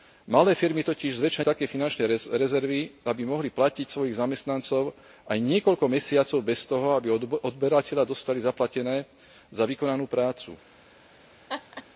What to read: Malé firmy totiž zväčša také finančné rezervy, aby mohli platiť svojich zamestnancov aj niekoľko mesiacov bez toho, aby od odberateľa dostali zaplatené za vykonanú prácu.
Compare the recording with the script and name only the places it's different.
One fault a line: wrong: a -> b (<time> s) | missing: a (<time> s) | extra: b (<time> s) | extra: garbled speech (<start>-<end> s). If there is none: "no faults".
no faults